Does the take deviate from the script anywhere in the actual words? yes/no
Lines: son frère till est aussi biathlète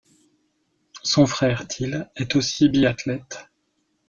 no